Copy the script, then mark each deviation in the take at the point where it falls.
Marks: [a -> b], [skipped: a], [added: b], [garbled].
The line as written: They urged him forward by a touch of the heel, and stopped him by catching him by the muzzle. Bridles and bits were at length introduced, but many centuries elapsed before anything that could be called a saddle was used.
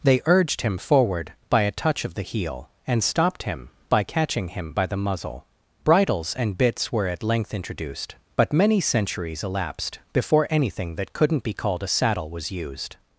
They urged him forward by a touch of the heel, and stopped him by catching him by the muzzle. Bridles and bits were at length introduced, but many centuries elapsed before anything that [could -> couldn't] be called a saddle was used.